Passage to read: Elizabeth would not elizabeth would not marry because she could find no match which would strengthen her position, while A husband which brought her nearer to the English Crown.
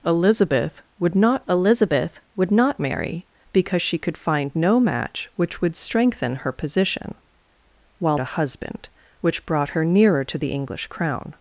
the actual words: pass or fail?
pass